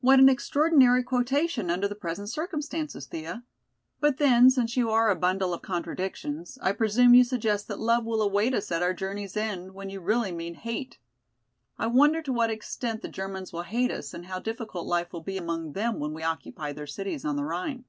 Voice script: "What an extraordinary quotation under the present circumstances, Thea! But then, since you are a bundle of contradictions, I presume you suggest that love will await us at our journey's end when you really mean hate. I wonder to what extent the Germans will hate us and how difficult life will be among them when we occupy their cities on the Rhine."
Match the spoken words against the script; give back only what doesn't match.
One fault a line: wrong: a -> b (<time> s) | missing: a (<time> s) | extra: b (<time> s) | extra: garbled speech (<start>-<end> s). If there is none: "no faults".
no faults